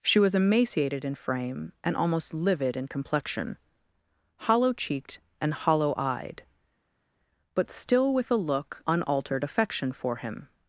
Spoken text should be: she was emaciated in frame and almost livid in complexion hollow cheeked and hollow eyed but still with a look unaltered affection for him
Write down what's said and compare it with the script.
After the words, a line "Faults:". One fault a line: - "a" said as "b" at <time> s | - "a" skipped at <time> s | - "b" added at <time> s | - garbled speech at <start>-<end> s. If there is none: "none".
she was emaciated in frame and almost livid in complexion hollow cheeked and hollow eyed but still with a look unaltered affection for him
Faults:
none